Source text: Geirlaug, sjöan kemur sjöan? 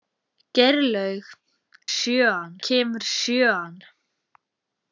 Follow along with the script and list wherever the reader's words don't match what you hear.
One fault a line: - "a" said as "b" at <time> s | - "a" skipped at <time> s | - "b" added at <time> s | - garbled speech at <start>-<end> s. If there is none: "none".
none